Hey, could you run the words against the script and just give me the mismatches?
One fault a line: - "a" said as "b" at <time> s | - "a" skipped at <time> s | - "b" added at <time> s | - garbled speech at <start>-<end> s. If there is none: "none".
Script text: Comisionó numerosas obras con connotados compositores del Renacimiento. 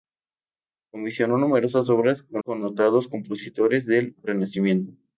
none